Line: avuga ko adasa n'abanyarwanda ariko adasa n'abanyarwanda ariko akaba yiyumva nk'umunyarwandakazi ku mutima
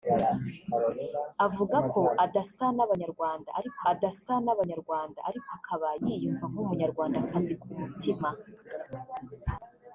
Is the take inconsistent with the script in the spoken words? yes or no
no